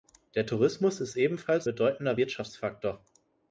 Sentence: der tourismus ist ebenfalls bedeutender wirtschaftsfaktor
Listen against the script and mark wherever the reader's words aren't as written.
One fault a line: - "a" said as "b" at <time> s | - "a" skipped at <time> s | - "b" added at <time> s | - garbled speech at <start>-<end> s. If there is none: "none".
none